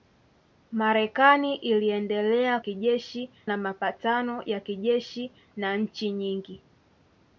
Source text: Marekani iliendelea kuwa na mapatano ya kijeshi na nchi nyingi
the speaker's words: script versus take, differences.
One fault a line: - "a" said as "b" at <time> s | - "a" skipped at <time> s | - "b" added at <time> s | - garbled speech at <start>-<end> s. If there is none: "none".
- "kuwa" said as "kijeshi" at 2.6 s